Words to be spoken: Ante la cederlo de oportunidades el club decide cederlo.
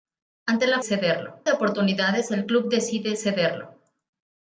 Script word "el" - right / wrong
right